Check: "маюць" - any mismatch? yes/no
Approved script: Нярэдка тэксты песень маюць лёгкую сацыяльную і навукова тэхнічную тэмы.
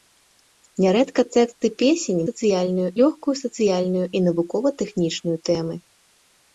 yes